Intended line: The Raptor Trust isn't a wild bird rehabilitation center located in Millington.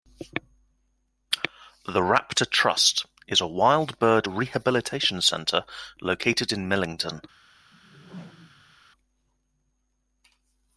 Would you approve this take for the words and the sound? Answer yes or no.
no